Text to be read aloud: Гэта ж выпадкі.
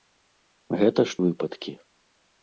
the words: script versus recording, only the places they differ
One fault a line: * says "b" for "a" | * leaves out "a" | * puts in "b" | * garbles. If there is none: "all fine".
all fine